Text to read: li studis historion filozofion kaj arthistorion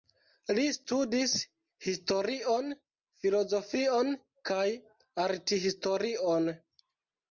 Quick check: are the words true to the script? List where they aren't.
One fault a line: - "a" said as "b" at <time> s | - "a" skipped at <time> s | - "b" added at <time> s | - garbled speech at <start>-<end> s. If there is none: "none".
none